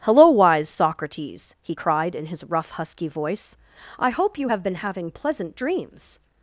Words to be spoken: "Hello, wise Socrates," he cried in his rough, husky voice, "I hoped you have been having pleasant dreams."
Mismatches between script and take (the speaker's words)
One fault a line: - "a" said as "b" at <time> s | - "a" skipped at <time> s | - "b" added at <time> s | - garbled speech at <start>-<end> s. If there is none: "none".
- "hoped" said as "hope" at 4.1 s